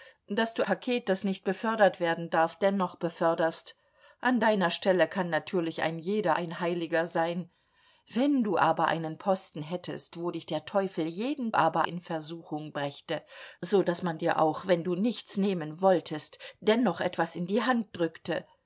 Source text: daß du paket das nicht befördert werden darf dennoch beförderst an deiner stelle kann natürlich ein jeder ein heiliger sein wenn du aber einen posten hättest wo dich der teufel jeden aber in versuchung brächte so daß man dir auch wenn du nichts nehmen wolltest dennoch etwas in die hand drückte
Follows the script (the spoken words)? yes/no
yes